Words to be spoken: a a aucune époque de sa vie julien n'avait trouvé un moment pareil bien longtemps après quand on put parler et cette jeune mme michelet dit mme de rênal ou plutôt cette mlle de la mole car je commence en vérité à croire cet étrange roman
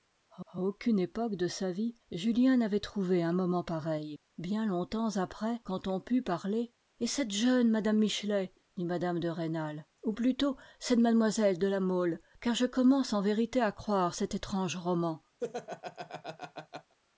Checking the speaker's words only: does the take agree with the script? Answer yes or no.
yes